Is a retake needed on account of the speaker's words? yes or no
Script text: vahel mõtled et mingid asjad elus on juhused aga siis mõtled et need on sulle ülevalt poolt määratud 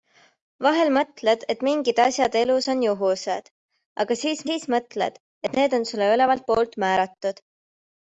yes